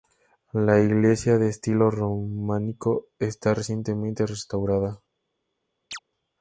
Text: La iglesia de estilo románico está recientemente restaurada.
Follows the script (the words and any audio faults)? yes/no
no